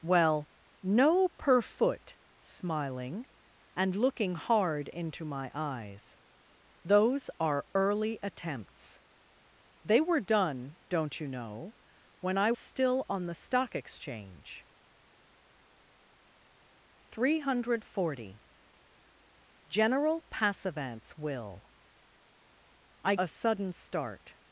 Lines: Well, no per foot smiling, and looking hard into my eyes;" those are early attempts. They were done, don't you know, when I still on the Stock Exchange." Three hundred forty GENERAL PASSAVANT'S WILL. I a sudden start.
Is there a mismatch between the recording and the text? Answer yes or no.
no